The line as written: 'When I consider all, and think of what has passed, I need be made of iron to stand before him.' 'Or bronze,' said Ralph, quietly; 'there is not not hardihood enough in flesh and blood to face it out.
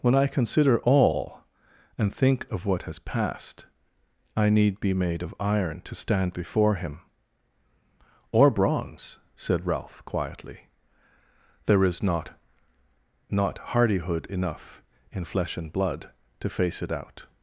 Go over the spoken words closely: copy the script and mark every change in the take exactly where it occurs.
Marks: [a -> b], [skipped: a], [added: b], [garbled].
'When I consider all, and think of what has passed, I need be made of iron to stand before him.' 'Or bronze,' said Ralph, quietly; 'there is not not hardihood enough in flesh and blood to face it out.